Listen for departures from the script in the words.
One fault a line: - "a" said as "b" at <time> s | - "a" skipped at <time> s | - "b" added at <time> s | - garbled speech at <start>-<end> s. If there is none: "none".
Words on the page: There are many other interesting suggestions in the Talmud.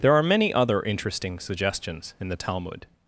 none